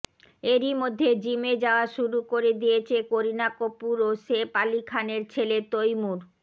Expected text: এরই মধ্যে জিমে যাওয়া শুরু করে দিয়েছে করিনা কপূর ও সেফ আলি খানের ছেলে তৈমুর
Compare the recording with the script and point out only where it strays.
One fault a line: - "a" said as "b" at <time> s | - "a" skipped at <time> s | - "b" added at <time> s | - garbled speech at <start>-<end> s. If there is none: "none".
none